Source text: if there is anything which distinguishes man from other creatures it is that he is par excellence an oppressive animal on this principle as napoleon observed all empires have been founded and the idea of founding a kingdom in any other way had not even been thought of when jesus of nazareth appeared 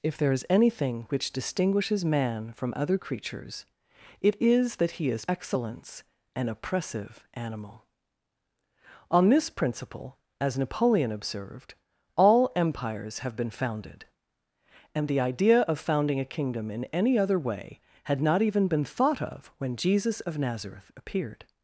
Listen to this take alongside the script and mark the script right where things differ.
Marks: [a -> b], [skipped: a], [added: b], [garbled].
if there is anything which distinguishes man from other creatures it is that he is [skipped: par] excellence an oppressive animal on this principle as napoleon observed all empires have been founded and the idea of founding a kingdom in any other way had not even been thought of when jesus of nazareth appeared